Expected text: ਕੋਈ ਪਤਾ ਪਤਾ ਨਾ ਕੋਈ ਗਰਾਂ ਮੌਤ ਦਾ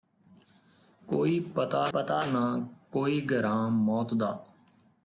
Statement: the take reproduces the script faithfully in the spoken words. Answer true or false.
true